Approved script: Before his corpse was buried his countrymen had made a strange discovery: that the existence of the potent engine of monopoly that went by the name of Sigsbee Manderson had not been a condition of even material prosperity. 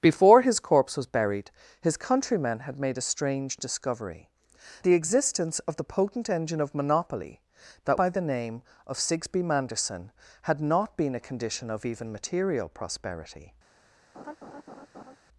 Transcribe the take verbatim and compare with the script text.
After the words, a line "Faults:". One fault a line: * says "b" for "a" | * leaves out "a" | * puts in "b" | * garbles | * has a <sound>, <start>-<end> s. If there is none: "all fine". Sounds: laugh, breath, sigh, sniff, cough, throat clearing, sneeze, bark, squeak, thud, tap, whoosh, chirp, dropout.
Before his corpse was buried his countrymen had made a strange discovery: the existence of the potent engine of monopoly that by the name of Sigsbee Manderson had not been a condition of even material prosperity.
Faults:
* leaves out "that"
* leaves out "went"
* has a laugh, 14.1-15.2 s